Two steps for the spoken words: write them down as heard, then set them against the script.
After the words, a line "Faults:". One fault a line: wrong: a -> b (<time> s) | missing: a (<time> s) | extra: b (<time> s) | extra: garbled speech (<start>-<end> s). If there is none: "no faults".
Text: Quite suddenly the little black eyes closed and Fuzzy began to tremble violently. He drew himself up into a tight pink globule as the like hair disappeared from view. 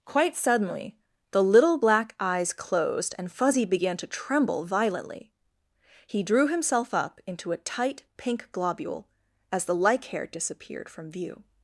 Quite suddenly the little black eyes closed and Fuzzy began to tremble violently. He drew himself up into a tight pink globule as the like hair disappeared from view.
Faults:
no faults